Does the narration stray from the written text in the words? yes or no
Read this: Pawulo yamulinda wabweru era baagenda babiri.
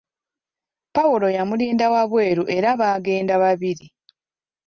no